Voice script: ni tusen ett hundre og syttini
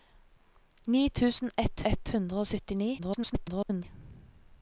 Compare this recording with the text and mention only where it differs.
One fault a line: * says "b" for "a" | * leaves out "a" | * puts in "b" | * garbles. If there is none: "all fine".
* puts in "ett"
* garbles